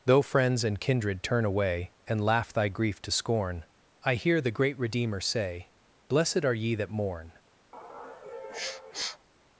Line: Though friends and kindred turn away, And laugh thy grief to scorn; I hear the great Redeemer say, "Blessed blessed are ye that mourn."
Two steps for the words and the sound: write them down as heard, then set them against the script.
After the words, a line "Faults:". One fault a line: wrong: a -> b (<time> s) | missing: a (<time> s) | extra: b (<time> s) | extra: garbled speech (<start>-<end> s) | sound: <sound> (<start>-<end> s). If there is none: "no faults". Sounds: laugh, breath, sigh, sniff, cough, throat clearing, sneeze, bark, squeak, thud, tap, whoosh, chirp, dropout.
Though friends and kindred turn away, And laugh thy grief to scorn; I hear the great Redeemer say, "Blessed are ye that mourn."
Faults:
missing: blessed (6.4 s)
sound: sniff (7.7-9.3 s)